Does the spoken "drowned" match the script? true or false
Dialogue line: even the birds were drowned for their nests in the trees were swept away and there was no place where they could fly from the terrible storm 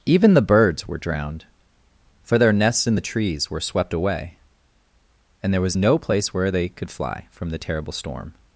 true